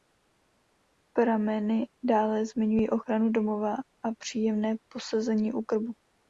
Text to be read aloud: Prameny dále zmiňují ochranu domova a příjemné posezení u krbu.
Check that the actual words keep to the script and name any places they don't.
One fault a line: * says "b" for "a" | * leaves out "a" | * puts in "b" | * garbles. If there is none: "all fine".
all fine